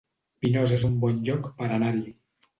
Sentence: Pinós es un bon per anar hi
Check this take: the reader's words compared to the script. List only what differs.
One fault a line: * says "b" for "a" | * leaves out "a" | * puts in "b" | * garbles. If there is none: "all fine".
* puts in "lloc"